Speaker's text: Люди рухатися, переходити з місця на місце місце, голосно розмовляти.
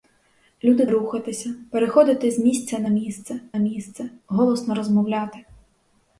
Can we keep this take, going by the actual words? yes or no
yes